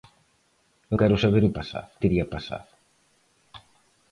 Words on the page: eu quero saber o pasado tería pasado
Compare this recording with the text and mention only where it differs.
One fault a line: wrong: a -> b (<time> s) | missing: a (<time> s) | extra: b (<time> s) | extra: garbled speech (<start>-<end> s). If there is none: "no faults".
no faults